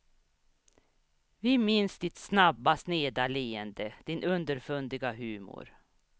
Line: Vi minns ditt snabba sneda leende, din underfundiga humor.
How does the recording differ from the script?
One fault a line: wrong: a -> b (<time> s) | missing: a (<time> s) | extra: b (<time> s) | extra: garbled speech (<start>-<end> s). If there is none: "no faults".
no faults